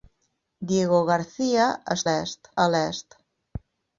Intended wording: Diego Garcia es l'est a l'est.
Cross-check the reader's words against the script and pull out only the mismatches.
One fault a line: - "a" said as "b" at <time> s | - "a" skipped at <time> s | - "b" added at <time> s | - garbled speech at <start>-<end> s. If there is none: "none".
none